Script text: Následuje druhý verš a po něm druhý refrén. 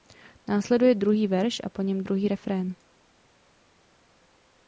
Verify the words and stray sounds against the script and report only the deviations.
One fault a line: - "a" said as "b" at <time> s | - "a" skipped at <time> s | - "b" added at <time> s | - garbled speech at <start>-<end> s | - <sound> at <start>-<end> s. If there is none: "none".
none